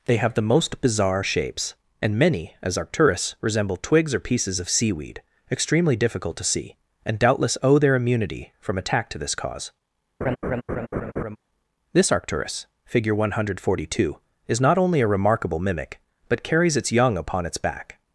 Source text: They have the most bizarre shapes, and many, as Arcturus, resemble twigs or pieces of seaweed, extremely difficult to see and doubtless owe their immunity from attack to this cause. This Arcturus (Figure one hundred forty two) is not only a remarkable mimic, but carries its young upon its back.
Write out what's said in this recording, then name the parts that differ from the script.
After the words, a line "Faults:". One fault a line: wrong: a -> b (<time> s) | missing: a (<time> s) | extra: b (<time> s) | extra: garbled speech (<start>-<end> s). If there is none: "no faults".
They have the most bizarre shapes, and many, as Arcturus, resemble twigs or pieces of seaweed, extremely difficult to see and doubtless owe their immunity from attack to this cause. This Arcturus (Figure one hundred forty two) is not only a remarkable mimic, but carries its young upon its back.
Faults:
no faults